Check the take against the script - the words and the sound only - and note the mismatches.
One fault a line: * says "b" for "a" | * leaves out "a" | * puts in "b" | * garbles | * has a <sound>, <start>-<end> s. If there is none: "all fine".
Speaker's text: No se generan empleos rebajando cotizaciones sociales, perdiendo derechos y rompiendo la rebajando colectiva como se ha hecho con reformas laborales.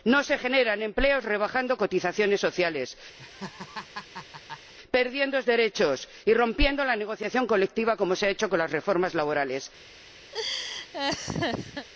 * has a laugh, 3.2-4.7 s
* says "negociación" for "rebajando"
* puts in "las"
* has a laugh, 10.3-11.9 s